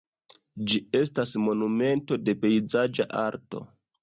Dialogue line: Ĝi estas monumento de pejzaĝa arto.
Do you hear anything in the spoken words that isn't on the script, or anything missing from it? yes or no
no